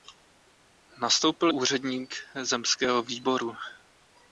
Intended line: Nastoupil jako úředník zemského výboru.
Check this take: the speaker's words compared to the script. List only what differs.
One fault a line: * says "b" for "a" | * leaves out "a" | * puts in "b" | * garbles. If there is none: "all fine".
* leaves out "jako"